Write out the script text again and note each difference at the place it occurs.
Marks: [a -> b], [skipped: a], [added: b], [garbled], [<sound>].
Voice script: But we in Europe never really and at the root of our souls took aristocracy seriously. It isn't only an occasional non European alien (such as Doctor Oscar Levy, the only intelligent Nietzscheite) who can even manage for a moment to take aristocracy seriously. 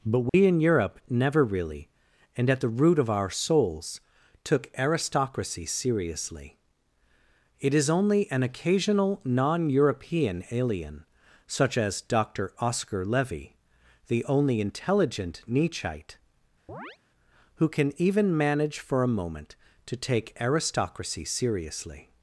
But we [dropout] in Europe never really and at the root of our souls took aristocracy seriously. It [isn't -> is] only an occasional non European alien (such as Doctor Oscar Levy, the only intelligent Nietzscheite) [chirp] who can even manage for a moment to take aristocracy seriously.